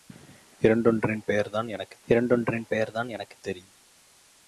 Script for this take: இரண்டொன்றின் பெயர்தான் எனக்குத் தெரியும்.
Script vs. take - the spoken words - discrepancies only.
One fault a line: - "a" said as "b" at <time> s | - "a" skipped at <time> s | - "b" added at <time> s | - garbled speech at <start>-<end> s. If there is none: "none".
- "இரண்டொன்றின் பெயர்தான் எனக்குத்" added at 2.1 s